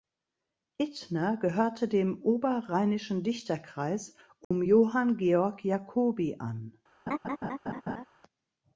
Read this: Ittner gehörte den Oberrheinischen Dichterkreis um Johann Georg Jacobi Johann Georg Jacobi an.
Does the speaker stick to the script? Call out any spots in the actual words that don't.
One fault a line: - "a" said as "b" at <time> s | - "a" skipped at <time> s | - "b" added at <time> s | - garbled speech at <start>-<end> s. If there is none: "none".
- "den" said as "dem" at 1.9 s
- "Johann Georg Jacobi" skipped at 6.4 s